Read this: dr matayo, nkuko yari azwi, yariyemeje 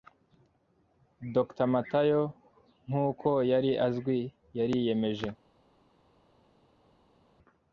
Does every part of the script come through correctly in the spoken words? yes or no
yes